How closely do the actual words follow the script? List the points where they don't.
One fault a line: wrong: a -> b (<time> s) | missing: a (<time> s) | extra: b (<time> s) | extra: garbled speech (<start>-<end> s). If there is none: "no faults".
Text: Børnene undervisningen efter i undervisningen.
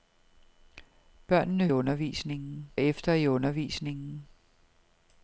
no faults